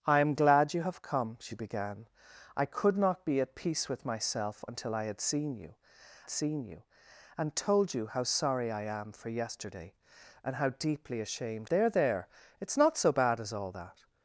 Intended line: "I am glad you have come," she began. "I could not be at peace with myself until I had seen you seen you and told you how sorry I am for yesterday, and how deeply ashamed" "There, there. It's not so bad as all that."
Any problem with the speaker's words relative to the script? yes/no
no